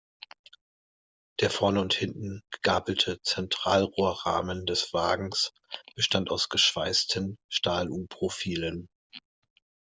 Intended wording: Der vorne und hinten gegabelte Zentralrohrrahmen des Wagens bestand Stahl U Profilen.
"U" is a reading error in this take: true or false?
false